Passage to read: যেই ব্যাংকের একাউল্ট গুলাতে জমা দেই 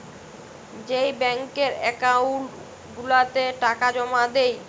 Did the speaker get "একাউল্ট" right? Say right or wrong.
right